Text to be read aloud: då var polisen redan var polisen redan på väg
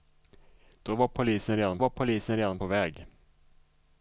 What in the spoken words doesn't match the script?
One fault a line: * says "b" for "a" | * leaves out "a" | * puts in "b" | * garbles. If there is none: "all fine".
all fine